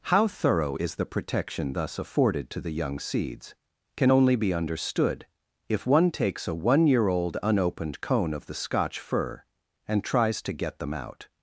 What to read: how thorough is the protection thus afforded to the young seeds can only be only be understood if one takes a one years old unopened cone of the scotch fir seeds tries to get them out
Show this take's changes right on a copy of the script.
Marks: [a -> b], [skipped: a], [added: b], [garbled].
how thorough is the protection thus afforded to the young seeds can only be [skipped: only be] understood if one takes a one [years -> year] old unopened cone of the scotch fir [seeds -> and] tries to get them out